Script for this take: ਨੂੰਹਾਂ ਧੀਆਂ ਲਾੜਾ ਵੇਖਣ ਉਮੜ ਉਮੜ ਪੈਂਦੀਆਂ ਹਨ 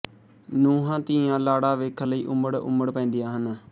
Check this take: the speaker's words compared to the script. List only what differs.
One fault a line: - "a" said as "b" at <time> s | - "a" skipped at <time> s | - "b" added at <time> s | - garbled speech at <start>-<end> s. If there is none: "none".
- "ਲਈ" added at 2.1 s